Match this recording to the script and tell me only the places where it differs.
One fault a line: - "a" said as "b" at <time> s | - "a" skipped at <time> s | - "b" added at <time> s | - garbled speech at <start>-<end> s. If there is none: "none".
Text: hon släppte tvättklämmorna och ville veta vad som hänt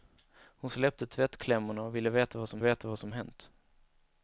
- "veta vad som" added at 2.6 s